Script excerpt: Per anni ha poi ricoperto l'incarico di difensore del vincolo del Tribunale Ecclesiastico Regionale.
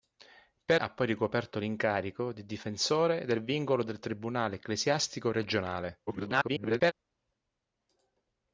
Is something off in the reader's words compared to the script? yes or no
yes